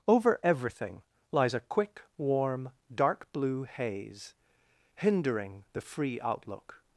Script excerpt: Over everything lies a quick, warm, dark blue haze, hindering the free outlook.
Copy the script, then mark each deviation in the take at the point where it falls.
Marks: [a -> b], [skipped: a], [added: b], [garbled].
Over everything lies a quick, warm, dark blue haze, hindering the free outlook.